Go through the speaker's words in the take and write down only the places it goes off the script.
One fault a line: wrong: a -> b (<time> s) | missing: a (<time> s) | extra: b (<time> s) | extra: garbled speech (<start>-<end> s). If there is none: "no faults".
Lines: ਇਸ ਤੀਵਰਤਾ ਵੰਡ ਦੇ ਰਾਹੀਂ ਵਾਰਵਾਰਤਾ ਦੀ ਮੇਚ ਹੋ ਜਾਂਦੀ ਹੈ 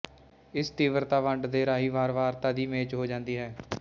no faults